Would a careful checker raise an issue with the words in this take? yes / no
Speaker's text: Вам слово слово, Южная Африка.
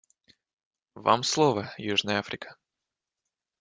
yes